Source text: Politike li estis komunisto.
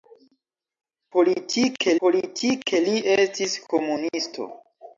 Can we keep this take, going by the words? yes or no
no